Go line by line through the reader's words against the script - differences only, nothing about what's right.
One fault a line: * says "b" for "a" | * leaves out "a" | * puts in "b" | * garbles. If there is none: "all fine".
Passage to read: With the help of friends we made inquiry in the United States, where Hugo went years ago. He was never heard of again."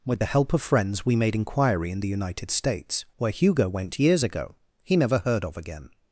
* leaves out "was"